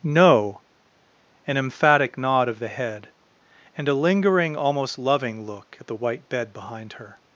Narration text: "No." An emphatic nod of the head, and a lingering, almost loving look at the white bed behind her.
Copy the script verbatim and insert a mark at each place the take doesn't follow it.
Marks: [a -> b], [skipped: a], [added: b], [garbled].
"No." An emphatic nod of the head, and a lingering, almost loving look at the white bed behind her.